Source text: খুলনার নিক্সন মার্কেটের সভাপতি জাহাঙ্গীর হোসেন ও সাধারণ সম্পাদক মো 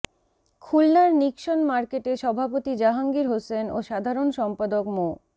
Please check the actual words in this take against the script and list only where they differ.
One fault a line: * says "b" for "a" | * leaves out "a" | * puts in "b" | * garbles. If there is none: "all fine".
all fine